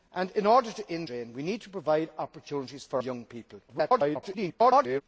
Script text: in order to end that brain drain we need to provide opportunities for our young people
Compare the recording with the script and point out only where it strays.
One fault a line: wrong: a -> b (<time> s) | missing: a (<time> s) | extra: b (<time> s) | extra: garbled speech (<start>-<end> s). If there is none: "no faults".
missing: that brain (1.1 s)
missing: our (3.0 s)
extra: garbled speech (3.7-5.0 s)